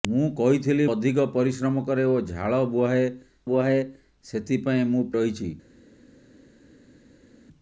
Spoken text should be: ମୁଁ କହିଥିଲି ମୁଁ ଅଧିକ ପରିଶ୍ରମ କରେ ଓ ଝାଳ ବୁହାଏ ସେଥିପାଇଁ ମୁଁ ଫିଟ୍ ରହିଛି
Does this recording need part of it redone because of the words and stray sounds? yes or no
yes